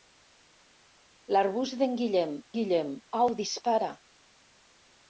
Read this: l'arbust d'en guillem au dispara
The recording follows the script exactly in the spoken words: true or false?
false